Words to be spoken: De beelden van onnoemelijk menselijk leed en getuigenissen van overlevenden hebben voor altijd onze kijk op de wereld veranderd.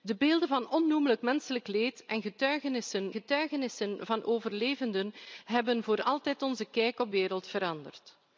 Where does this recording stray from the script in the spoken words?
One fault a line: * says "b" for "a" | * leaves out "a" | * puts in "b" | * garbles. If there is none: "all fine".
* puts in "getuigenissen"
* leaves out "de"